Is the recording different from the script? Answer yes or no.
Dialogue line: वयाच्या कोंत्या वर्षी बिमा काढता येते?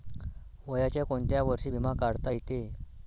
no